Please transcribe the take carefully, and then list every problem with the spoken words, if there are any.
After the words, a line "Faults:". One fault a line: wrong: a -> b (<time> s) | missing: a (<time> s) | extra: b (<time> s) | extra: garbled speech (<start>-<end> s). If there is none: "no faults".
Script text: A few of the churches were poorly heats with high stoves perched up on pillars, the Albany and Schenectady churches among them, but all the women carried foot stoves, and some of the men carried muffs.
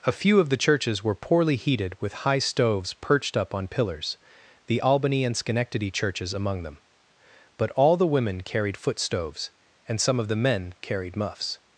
A few of the churches were poorly heated with high stoves perched up on pillars, the Albany and Schenectady churches among them, but all the women carried foot stoves, and some of the men carried muffs.
Faults:
wrong: heats -> heated (1.6 s)